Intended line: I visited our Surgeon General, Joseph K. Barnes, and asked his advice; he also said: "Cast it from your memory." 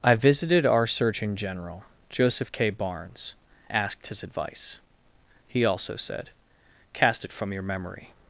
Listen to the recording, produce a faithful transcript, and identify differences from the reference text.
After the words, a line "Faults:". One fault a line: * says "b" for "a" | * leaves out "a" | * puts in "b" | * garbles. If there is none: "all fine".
I visited our Surgeon General, Joseph K. Barnes, asked his advice; he also said: "Cast it from your memory."
Faults:
* leaves out "and"